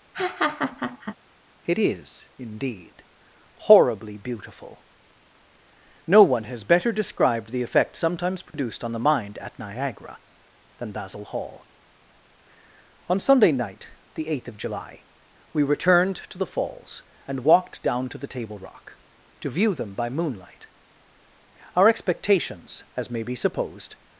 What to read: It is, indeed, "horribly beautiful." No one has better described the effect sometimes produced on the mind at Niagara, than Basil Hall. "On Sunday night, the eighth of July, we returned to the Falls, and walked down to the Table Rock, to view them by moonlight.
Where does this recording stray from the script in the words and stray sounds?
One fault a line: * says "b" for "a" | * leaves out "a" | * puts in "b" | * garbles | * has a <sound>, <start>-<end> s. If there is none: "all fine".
* has a laugh, 0.1-1.2 s
* has a dropout, 8.5-8.5 s
* puts in "Our expectations as may be supposed"